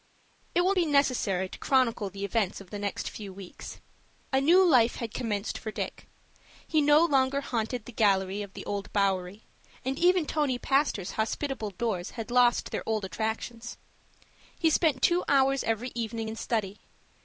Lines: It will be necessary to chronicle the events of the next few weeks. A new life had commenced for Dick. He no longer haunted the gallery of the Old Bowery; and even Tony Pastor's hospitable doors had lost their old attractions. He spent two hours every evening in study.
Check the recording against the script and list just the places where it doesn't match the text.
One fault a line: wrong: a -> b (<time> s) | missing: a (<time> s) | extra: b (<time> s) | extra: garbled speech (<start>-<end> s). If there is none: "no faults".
no faults